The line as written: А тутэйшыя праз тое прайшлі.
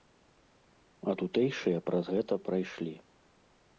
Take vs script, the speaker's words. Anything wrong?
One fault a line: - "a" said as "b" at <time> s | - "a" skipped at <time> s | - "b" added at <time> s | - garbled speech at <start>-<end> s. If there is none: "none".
- "тое" said as "гэта" at 2.2 s